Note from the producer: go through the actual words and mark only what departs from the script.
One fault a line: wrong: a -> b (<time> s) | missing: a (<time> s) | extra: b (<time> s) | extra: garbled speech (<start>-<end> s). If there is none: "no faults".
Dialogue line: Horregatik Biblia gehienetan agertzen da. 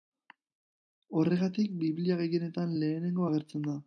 extra: lehenengo (2.8 s)